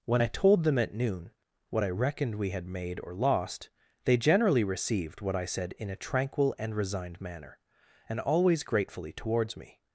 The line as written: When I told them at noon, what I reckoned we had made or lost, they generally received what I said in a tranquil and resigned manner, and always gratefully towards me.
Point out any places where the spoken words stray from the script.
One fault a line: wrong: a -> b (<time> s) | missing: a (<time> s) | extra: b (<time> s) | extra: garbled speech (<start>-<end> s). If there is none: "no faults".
no faults